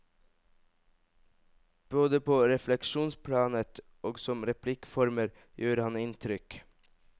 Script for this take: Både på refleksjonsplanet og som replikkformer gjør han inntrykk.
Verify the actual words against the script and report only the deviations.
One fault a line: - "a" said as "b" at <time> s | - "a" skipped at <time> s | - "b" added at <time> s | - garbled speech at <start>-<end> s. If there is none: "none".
none